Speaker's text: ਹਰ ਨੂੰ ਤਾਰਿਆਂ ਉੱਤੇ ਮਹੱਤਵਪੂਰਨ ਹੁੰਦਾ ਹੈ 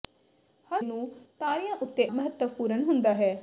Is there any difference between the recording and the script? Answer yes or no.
no